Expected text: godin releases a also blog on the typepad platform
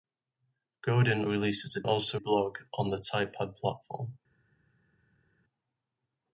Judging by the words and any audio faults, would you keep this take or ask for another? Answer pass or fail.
pass